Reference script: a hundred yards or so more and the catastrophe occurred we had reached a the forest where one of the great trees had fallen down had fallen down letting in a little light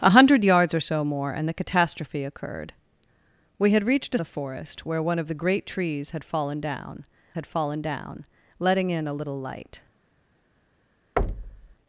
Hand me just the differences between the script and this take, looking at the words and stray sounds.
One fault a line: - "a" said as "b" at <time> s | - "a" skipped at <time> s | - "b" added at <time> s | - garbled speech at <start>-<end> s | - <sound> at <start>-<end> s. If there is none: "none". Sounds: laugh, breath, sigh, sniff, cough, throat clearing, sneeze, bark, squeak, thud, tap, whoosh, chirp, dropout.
- thud at 11.2-11.8 s